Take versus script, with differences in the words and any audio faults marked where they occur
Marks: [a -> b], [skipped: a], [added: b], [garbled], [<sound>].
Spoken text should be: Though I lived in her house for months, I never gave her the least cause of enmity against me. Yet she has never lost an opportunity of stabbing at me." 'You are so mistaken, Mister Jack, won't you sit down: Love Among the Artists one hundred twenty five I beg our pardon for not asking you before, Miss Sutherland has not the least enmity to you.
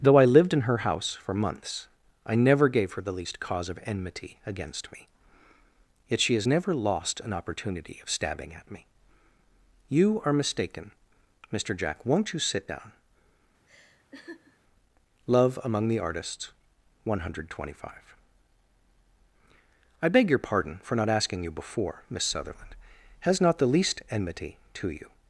Though I lived in her house for months, I never gave her the least cause of enmity against me. Yet she has never lost an opportunity of stabbing at me." 'You are [skipped: so] mistaken, Mister Jack, won't you sit down: [laugh] Love Among the Artists one hundred twenty five I beg [our -> your] pardon for not asking you before, Miss Sutherland has not the least enmity to you.